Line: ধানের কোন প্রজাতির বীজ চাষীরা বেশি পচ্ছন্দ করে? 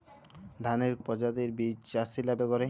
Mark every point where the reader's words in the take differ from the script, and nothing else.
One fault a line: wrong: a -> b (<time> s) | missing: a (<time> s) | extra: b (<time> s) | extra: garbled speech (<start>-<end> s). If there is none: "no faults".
missing: কোন (0.9 s)
missing: বেশি পচ্ছন্দ (2.3 s)